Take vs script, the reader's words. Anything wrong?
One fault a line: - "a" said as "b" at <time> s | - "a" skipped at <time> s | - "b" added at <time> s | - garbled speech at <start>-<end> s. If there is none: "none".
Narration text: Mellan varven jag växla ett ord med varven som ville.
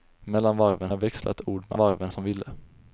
none